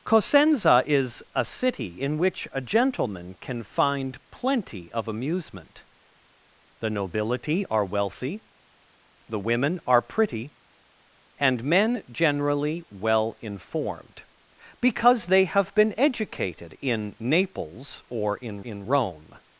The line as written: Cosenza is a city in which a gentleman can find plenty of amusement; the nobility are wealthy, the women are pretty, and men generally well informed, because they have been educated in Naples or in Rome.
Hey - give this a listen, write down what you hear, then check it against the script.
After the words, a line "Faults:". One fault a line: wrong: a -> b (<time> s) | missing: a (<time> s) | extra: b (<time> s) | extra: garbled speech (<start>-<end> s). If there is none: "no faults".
Cosenza is a city in which a gentleman can find plenty of amusement; the nobility are wealthy, the women are pretty, and men generally well informed, because they have been educated in Naples or in in Rome.
Faults:
extra: in (18.6 s)